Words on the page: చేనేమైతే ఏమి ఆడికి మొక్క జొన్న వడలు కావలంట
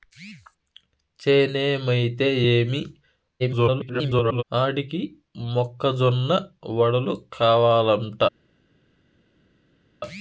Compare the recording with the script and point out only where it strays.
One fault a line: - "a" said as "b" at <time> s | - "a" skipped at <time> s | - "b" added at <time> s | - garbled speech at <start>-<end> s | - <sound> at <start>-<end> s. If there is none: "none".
- garbled speech at 3.4-4.4 s